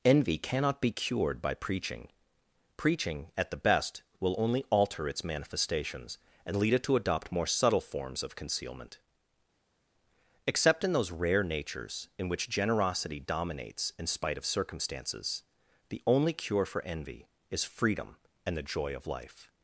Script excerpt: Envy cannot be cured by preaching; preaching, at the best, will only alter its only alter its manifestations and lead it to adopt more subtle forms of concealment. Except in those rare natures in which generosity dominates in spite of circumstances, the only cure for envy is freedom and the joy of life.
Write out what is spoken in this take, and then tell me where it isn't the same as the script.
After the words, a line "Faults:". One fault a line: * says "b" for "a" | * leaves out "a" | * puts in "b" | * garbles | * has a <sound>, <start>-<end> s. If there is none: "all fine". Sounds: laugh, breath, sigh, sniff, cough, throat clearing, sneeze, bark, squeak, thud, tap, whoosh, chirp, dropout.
Envy cannot be cured by preaching; preaching, at the best, will only alter its manifestations and lead it to adopt more subtle forms of concealment. Except in those rare natures in which generosity dominates in spite of circumstances, the only cure for envy is freedom and the joy of life.
Faults:
* leaves out "only alter its"